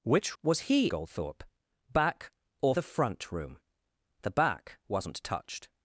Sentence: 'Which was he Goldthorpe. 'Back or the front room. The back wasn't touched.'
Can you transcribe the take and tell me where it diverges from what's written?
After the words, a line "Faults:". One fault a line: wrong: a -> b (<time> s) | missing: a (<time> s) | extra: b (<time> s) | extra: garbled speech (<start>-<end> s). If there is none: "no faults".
'Which was he Goldthorpe. 'Back or the front room. The back wasn't touched.'
Faults:
no faults